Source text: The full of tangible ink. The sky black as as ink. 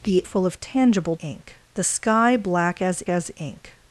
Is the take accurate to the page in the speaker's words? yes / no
yes